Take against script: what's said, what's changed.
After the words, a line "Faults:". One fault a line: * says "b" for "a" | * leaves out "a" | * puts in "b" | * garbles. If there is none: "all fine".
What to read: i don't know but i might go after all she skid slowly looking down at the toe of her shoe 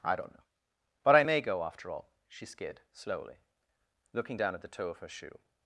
i don't know but i may go after all she skid slowly looking down at the toe of her shoe
Faults:
* says "may" for "might"